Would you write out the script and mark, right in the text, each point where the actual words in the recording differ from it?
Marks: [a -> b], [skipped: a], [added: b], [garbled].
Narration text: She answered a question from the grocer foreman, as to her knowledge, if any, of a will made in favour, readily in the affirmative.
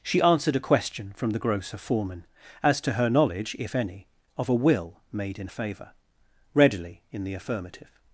She answered a question from the grocer foreman, as to her knowledge, if any, of a will made in favour, readily in the affirmative.